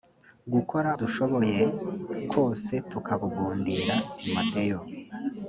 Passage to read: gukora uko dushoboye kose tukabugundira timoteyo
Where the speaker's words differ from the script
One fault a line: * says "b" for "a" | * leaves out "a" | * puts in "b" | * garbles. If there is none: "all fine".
* leaves out "uko"